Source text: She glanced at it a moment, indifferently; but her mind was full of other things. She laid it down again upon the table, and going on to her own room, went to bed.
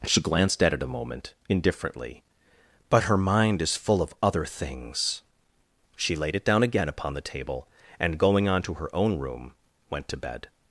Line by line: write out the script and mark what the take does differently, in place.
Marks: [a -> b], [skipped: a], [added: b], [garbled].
She glanced at it a moment, indifferently; but her mind [was -> is] full of other things. She laid it down again upon the table, and going on to her own room, went to bed.